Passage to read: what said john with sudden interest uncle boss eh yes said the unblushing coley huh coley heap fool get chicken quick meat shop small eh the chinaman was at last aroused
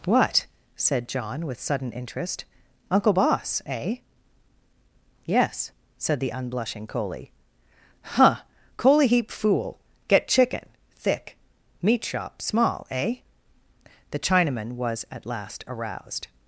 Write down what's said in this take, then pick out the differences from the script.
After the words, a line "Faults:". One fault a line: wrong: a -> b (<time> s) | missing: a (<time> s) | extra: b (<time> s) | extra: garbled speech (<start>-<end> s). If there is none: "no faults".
what said john with sudden interest uncle boss eh yes said the unblushing coley huh coley heap fool get chicken thick meat shop small eh the chinaman was at last aroused
Faults:
wrong: quick -> thick (11.0 s)